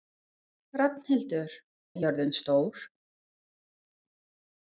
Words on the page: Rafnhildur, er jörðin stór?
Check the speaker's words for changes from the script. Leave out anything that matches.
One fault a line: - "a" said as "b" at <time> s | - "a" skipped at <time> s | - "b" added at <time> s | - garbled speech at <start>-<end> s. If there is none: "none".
none